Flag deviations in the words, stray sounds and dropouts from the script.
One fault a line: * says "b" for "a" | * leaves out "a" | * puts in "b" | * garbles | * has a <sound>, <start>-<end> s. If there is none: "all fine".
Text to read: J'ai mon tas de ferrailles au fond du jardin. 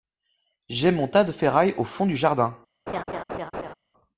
* has a laugh, 2.9-3.7 s